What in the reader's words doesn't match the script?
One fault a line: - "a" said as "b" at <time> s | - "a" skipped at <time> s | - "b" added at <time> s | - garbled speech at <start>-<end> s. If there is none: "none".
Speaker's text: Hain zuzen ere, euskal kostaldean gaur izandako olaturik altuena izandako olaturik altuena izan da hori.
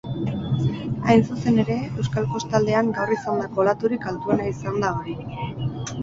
- "izandako olaturik altuena" skipped at 4.5 s